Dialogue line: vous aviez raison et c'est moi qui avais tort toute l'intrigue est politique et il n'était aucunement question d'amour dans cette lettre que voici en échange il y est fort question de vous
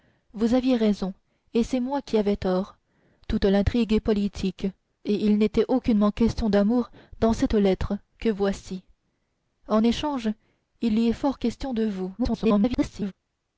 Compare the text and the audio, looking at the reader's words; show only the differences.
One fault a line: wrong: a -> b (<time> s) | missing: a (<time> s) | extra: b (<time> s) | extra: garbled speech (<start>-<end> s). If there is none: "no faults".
extra: garbled speech (12.2-13.1 s)